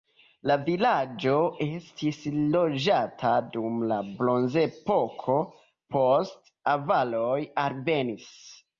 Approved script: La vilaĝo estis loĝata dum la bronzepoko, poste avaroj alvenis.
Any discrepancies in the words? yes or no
no